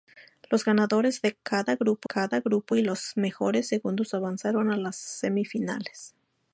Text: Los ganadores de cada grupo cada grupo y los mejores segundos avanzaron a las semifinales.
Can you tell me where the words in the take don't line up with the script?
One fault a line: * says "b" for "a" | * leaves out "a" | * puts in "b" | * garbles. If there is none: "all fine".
all fine